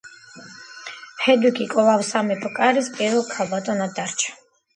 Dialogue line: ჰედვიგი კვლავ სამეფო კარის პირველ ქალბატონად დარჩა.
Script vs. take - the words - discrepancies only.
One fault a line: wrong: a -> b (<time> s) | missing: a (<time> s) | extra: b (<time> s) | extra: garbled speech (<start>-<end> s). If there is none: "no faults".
no faults